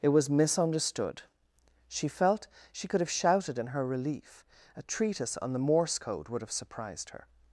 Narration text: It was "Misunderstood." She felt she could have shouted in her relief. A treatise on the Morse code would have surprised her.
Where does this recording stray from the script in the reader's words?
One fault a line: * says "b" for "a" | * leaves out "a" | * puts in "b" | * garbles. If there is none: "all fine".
all fine